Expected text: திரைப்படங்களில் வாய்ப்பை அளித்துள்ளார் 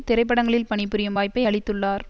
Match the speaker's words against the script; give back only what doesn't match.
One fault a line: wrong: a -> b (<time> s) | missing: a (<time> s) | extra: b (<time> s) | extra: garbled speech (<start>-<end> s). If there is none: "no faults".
extra: பணிபுரியும் (0.7 s)